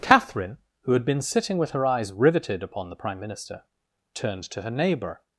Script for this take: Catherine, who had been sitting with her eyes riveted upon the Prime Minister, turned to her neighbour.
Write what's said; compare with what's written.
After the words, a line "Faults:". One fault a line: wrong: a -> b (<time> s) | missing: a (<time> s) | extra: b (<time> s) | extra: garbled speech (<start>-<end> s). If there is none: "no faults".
Catherine, who had been sitting with her eyes riveted upon the Prime Minister, turned to her neighbour.
Faults:
no faults